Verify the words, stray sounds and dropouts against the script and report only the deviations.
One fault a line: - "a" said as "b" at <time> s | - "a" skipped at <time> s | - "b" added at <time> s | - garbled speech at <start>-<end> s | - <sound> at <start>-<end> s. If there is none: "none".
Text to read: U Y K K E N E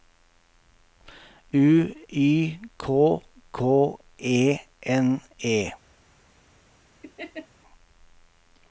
- laugh at 7.0-7.5 s